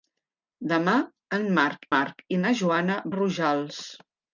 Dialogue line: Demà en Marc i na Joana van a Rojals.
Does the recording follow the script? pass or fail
fail